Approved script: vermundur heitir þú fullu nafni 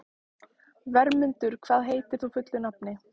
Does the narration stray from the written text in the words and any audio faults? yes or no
yes